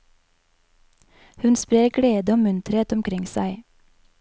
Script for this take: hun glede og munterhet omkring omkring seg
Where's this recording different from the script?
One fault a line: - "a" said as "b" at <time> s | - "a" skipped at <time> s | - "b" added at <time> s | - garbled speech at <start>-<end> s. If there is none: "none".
- "sprer" added at 1.6 s
- "omkring" skipped at 3.3 s